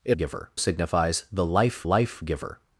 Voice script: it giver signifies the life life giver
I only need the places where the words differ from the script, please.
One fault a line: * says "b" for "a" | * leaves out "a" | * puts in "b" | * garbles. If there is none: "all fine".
all fine